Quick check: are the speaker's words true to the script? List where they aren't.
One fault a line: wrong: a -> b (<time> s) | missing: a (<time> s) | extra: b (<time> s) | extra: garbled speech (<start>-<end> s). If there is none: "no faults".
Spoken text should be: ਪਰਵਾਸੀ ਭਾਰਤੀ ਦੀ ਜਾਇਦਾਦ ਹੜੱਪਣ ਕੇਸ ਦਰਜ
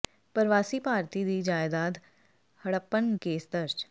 no faults